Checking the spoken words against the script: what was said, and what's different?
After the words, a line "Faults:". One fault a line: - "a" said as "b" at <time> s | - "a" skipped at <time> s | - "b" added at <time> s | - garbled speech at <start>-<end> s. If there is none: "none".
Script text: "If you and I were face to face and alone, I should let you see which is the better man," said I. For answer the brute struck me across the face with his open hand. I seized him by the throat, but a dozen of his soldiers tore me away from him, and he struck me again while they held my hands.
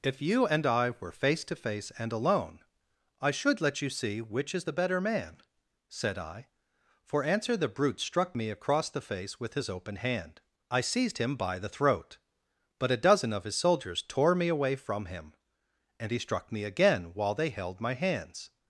"If you and I were face to face and alone, I should let you see which is the better man," said I. For answer the brute struck me across the face with his open hand. I seized him by the throat, but a dozen of his soldiers tore me away from him, and he struck me again while they held my hands.
Faults:
none